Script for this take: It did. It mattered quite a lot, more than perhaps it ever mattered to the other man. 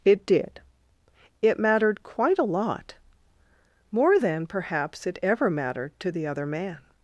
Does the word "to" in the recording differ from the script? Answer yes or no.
no